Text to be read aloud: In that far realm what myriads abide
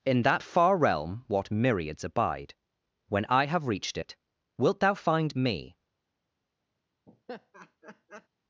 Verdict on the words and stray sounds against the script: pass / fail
fail